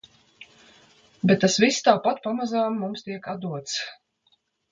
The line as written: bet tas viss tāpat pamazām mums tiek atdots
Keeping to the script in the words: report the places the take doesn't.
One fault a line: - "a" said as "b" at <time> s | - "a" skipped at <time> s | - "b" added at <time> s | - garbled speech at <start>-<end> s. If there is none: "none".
none